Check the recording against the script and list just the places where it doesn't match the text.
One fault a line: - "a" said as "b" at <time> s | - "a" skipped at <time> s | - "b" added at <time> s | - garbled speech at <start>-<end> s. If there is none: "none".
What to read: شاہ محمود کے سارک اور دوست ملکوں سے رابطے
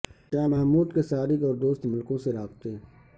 none